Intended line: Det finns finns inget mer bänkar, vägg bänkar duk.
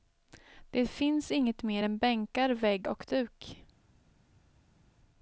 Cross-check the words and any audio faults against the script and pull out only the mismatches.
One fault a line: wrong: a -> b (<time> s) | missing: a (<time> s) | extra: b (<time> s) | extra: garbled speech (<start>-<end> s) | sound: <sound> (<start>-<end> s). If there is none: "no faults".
missing: finns (1.3 s)
extra: än (1.8 s)
wrong: bänkar -> och (2.8 s)